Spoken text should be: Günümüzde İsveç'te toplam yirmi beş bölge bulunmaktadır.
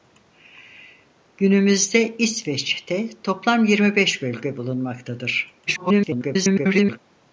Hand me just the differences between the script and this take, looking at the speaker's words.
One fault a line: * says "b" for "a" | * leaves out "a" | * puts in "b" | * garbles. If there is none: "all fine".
* garbles